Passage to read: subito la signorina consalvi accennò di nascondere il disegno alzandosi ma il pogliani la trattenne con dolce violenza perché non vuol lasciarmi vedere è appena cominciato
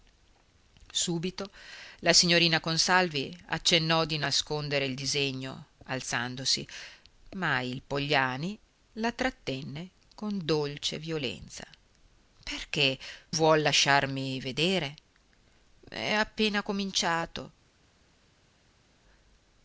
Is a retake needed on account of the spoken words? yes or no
yes